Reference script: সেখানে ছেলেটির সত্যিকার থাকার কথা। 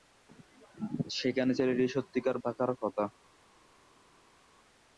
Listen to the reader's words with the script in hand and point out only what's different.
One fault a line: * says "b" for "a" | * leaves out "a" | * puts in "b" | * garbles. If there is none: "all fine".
all fine